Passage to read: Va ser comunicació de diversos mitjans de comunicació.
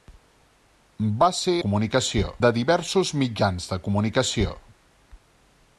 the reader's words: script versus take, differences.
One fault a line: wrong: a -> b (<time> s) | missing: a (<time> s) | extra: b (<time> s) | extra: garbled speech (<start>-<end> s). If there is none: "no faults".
no faults